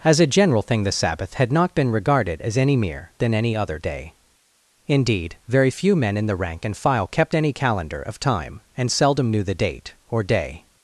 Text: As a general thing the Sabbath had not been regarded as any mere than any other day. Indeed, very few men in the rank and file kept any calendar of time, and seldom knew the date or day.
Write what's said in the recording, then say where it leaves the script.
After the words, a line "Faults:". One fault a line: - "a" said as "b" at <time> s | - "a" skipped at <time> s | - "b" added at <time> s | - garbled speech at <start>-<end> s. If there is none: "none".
As a general thing the Sabbath had not been regarded as any mere than any other day. Indeed, very few men in the rank and file kept any calendar of time, and seldom knew the date or day.
Faults:
none